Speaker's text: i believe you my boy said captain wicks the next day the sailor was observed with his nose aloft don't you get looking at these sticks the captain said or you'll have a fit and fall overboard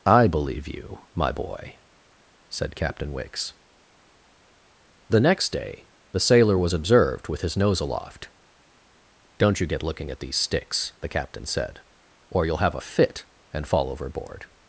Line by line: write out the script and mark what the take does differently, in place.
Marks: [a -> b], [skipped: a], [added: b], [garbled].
i believe you my boy said captain wicks the next day the sailor was observed with his nose aloft don't you get looking at these sticks the captain said or you'll have a fit and fall overboard